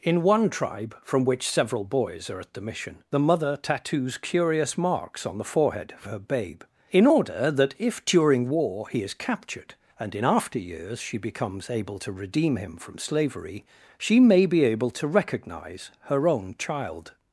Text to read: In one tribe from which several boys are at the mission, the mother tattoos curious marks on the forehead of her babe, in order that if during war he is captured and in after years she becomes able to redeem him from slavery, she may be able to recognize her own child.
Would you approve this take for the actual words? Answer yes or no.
yes